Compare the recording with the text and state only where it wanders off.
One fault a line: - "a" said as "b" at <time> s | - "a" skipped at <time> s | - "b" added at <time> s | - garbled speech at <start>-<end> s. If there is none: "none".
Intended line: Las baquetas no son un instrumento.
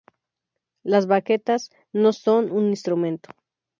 none